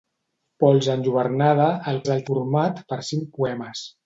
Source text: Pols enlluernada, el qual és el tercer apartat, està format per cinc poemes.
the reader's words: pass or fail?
fail